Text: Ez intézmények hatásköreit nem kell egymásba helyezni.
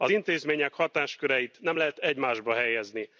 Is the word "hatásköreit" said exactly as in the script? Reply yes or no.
yes